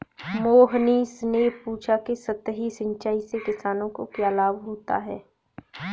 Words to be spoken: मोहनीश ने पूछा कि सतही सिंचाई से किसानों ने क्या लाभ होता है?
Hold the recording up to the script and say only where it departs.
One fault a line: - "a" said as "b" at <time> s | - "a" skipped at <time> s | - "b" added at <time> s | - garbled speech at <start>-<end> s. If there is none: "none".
- "ने" said as "को" at 3.9 s